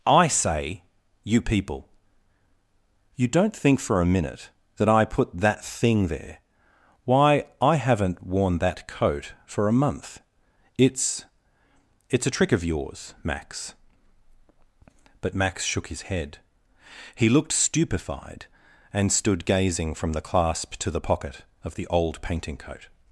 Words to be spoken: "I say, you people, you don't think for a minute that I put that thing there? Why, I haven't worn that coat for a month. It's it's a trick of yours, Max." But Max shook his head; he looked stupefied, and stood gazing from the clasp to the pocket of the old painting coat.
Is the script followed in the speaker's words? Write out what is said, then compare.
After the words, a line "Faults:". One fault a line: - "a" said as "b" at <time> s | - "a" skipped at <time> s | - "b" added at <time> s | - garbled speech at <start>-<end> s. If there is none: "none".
"I say, you people, you don't think for a minute that I put that thing there? Why, I haven't worn that coat for a month. It's it's a trick of yours, Max." But Max shook his head; he looked stupefied, and stood gazing from the clasp to the pocket of the old painting coat.
Faults:
none